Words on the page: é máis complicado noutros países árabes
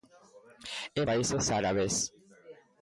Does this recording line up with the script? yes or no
no